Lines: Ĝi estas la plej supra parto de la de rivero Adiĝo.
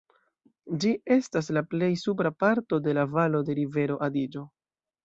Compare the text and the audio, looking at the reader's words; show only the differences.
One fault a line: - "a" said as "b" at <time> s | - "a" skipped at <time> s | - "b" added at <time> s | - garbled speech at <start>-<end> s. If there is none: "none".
- "valo" added at 3.2 s